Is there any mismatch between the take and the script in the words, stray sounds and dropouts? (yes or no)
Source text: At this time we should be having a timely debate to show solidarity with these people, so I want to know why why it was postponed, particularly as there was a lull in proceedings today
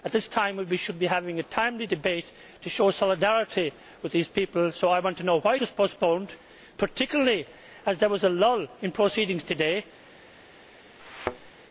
yes